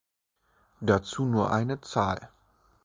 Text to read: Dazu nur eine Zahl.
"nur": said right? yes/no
yes